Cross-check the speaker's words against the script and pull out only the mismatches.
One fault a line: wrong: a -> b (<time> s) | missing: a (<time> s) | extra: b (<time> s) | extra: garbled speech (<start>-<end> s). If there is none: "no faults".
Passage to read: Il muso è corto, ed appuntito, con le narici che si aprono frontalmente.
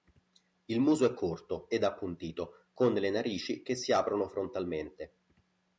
no faults